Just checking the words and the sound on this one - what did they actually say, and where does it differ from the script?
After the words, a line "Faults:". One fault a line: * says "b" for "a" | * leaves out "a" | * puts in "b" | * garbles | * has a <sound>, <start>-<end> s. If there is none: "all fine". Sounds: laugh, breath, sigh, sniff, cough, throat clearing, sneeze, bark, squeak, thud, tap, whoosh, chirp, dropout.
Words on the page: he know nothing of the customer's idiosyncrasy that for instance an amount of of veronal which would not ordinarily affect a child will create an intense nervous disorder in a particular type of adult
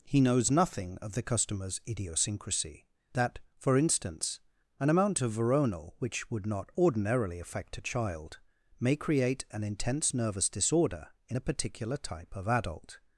he knows nothing of the customer's idiosyncrasy that for instance an amount of veronal which would not ordinarily affect a child may create an intense nervous disorder in a particular type of adult
Faults:
* says "knows" for "know"
* leaves out "of"
* says "may" for "will"